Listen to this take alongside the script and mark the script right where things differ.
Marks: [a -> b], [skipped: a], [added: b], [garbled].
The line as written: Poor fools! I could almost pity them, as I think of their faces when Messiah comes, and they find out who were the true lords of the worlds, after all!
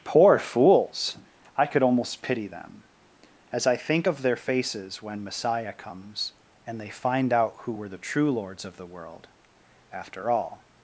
Poor fools! I could almost pity them, as I think of their faces when Messiah comes, and they find out who were the true lords of the [worlds, -> world] after all!